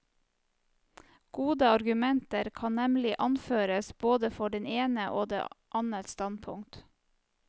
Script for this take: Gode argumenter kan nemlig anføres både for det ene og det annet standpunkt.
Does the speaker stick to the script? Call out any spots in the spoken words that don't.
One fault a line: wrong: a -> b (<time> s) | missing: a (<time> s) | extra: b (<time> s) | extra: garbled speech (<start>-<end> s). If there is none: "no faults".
no faults